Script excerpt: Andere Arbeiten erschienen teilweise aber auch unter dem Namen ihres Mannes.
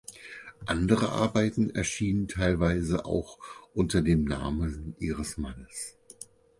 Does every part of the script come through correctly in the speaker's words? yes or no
no